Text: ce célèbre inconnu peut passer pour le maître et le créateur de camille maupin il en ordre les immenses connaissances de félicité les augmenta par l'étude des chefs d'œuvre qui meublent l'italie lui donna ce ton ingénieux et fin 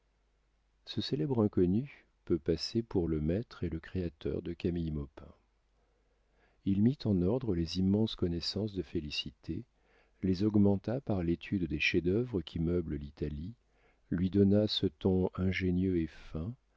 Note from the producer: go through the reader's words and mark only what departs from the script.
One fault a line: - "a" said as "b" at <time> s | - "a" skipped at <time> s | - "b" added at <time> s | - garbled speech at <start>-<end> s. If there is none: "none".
- "mit" added at 6.8 s